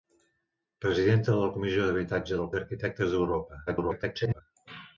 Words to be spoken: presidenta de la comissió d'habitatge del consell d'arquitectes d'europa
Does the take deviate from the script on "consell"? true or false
true